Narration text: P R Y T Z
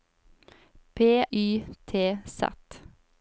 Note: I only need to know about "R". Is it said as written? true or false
false